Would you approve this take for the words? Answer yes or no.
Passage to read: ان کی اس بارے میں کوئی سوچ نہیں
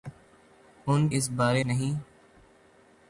no